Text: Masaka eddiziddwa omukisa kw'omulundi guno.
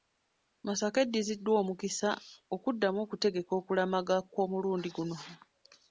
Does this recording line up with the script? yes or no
no